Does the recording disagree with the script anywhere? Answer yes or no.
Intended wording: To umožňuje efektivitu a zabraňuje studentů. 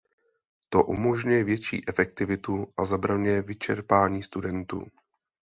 yes